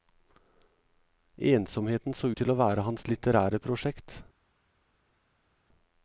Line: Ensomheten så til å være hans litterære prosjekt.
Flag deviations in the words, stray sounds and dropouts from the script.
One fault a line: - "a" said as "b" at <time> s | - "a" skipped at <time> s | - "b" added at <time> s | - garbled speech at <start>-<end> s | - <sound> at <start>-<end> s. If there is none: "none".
- "ut" added at 2.3 s